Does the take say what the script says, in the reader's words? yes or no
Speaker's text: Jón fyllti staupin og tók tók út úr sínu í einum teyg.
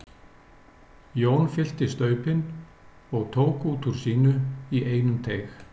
no